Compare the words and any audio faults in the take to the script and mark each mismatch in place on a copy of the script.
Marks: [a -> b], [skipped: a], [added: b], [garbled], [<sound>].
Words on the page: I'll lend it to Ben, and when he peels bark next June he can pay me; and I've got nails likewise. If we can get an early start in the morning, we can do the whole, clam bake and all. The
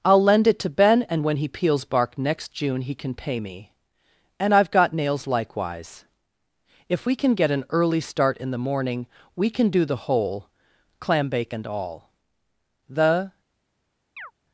I'll lend it to Ben, and when he peels bark next June he can pay me; and I've got nails likewise. If we can get an early start in the morning, we can do the whole, clam bake and all. The [chirp]